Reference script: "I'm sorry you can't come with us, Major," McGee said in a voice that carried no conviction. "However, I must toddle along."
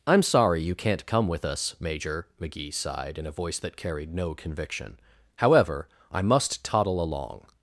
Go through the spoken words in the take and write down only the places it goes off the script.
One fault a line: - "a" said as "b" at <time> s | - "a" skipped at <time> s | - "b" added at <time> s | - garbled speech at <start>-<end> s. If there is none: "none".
- "said" said as "sighed" at 2.7 s